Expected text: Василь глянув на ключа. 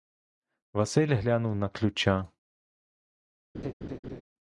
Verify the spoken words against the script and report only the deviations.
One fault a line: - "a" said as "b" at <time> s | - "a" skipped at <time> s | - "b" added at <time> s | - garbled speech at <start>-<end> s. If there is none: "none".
none